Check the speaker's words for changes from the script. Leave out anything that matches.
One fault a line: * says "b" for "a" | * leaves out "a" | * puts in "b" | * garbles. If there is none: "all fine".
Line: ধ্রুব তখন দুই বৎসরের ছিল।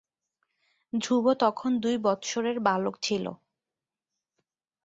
* puts in "বালক"